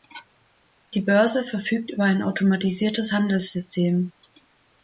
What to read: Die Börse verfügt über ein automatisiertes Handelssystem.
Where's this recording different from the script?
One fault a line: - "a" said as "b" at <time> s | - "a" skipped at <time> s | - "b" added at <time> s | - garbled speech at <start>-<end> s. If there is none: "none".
none